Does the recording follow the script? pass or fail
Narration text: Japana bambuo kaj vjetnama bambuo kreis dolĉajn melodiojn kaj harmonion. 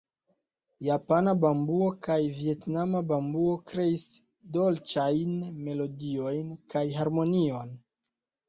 pass